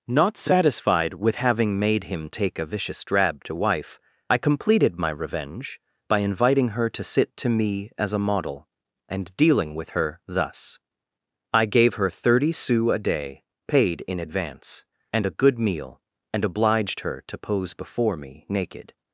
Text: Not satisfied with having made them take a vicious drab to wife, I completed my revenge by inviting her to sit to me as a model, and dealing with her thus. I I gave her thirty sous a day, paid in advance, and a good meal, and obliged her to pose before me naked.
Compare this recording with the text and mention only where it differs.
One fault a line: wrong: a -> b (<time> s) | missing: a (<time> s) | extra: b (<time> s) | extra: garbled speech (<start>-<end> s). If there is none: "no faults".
wrong: them -> him (2.0 s)
missing: I (11.7 s)